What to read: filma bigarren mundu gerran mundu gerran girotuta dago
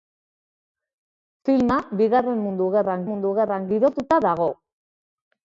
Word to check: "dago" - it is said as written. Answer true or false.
true